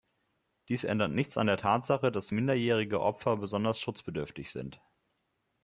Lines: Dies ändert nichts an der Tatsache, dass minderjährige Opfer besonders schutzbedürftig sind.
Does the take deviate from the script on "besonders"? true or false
false